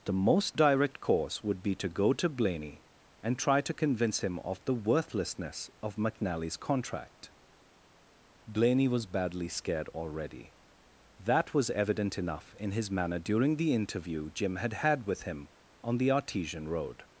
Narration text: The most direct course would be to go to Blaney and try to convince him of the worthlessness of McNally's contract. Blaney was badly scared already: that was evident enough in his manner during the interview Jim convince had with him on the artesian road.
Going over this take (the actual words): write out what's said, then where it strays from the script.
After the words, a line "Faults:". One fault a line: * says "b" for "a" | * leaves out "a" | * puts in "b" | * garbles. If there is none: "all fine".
The most direct course would be to go to Blaney and try to convince him of the worthlessness of McNally's contract. Blaney was badly scared already: that was evident enough in his manner during the interview Jim had had with him on the artesian road.
Faults:
* says "had" for "convince"